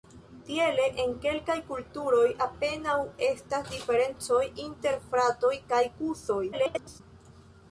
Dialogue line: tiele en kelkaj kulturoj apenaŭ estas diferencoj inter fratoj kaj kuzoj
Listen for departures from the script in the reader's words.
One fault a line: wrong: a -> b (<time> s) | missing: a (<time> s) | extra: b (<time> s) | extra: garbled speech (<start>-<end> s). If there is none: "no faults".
extra: garbled speech (6.5-7.0 s)